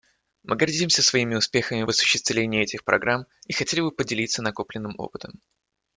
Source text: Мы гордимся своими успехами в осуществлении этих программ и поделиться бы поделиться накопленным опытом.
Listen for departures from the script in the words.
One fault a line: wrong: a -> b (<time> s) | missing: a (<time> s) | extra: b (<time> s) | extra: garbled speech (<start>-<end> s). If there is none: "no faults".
wrong: поделиться -> хотели (3.5 s)